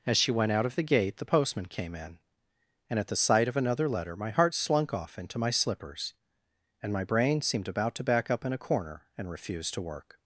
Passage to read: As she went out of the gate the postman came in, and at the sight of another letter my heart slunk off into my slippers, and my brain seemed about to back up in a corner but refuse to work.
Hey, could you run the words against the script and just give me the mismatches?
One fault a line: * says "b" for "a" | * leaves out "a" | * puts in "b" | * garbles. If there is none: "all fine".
* says "and" for "but"